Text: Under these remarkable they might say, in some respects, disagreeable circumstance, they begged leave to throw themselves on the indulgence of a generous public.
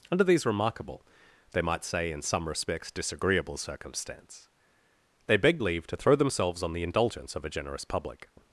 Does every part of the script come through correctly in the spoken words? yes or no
yes